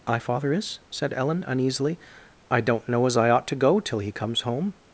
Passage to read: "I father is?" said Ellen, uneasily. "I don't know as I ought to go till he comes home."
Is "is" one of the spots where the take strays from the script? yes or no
no